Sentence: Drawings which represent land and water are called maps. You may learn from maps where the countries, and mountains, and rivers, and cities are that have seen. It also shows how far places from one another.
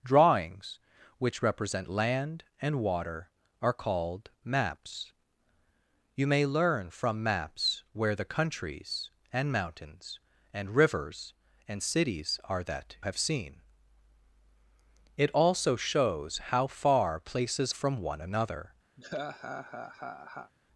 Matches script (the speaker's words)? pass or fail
pass